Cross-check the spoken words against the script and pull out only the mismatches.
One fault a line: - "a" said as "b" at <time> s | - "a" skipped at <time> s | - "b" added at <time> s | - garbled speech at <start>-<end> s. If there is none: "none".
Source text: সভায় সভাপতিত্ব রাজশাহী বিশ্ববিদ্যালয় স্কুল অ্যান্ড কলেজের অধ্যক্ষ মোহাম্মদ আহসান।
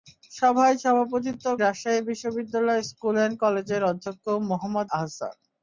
none